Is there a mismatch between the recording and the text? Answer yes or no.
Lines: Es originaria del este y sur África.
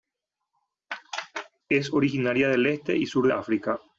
no